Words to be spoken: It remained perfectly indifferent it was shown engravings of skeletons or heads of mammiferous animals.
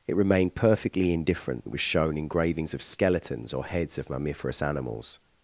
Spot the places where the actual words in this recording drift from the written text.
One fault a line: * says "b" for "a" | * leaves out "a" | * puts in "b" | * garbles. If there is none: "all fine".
all fine